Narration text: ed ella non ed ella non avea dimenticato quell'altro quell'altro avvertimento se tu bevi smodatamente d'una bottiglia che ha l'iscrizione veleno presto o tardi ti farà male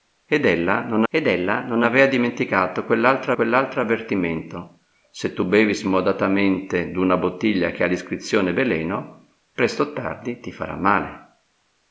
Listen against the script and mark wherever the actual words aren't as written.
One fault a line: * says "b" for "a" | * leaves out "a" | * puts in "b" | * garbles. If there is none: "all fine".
all fine